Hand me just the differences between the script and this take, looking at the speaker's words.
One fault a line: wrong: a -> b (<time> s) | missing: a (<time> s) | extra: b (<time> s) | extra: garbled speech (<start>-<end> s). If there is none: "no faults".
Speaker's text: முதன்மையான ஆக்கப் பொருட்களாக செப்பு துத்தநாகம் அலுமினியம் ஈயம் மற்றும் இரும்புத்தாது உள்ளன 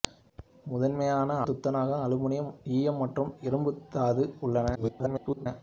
missing: ஆக்கப் பொருட்களாக செப்பு (1.4 s)
extra: garbled speech (4.7-5.5 s)